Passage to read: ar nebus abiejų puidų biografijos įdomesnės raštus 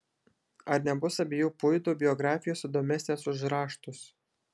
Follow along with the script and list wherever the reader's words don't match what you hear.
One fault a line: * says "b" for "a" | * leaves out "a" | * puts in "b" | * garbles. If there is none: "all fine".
* puts in "už"